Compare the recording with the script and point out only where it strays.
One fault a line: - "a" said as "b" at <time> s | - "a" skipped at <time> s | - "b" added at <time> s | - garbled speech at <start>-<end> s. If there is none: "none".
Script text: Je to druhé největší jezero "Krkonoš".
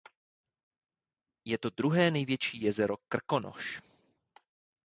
none